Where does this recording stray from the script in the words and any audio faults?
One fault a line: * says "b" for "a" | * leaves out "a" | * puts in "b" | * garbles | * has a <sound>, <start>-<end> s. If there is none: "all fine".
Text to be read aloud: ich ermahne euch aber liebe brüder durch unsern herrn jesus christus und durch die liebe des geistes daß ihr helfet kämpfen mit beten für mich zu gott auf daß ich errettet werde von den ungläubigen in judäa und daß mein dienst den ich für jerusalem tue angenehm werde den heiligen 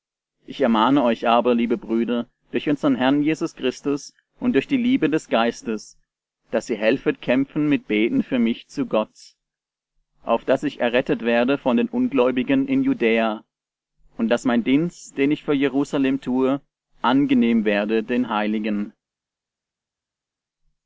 all fine